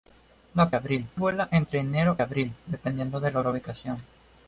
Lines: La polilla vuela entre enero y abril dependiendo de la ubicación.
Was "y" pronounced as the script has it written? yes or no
no